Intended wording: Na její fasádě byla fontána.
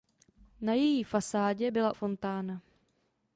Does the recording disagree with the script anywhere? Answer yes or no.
no